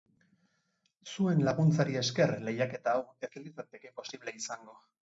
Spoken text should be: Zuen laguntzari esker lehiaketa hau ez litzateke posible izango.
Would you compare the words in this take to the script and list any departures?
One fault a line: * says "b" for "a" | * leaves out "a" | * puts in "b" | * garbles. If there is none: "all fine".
all fine